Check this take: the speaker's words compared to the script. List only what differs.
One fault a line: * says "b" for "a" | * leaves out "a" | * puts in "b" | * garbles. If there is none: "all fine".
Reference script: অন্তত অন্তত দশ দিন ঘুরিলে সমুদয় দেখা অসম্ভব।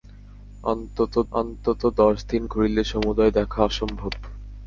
all fine